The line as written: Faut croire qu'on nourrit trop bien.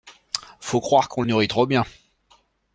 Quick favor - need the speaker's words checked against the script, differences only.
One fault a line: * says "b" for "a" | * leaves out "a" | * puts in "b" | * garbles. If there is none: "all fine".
all fine